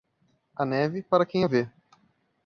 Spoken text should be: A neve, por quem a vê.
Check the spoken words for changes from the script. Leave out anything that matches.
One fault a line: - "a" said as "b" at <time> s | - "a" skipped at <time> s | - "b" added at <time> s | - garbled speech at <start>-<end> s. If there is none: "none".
- "por" said as "para" at 1.0 s